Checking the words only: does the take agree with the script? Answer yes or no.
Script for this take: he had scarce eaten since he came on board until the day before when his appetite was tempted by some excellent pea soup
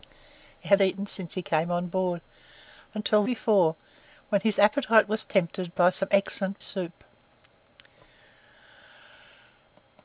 no